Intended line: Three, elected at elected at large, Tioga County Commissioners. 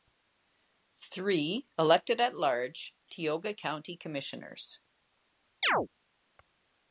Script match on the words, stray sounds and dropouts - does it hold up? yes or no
no